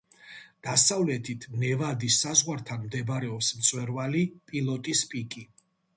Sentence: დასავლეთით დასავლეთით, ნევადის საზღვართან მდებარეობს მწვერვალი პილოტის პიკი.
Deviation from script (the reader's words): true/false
true